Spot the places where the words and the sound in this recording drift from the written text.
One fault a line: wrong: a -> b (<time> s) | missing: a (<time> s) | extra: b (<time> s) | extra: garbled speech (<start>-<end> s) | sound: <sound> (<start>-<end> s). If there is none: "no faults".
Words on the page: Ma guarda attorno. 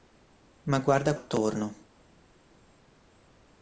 no faults